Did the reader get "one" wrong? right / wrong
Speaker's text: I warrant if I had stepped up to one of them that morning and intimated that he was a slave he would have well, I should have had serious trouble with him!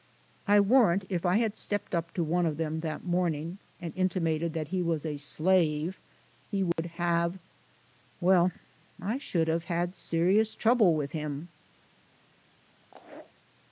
right